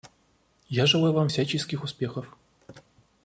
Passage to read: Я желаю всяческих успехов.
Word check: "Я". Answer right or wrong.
right